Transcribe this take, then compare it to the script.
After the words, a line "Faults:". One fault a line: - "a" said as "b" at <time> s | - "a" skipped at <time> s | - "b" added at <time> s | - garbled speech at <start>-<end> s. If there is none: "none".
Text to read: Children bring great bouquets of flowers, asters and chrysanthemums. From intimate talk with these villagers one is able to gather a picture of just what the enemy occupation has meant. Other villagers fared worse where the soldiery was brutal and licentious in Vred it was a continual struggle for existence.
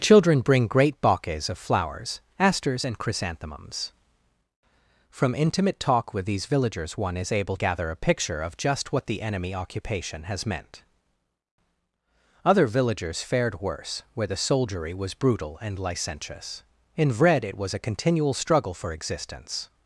Children bring great bouquets of flowers, asters and chrysanthemums. From intimate talk with these villagers one is able gather a picture of just what the enemy occupation has meant. Other villagers fared worse where the soldiery was brutal and licentious in Vred it was a continual struggle for existence.
Faults:
- "to" skipped at 7.6 s